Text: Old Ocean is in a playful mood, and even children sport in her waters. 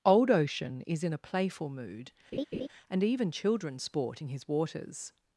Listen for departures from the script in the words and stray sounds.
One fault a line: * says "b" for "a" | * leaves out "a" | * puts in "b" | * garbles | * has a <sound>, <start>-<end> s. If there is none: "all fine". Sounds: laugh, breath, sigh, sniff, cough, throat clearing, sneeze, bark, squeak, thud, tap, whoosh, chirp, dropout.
* has a laugh, 2.3-2.7 s
* says "his" for "her"